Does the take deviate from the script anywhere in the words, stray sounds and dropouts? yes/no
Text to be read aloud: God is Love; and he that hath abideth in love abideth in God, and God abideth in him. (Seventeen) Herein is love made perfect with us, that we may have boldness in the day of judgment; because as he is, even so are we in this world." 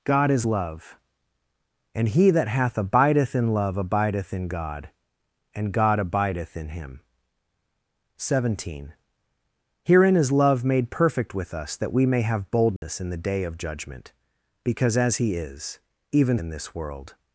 yes